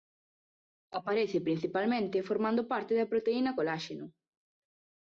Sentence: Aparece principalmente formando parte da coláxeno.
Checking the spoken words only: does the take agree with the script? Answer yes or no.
no